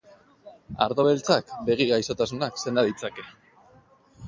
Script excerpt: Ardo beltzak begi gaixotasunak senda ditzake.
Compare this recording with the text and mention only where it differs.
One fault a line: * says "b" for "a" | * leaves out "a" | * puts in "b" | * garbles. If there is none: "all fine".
all fine